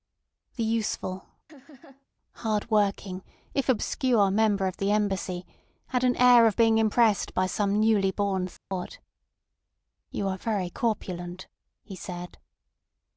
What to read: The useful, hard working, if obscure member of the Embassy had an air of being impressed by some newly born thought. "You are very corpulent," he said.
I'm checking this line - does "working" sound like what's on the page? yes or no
yes